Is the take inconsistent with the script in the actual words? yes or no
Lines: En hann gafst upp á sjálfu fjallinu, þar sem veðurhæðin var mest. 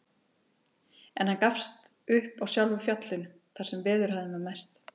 no